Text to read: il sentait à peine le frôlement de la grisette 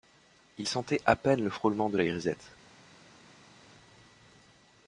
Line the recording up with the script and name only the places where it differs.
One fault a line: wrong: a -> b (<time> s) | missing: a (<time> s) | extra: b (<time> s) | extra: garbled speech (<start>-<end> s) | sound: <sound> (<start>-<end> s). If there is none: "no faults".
no faults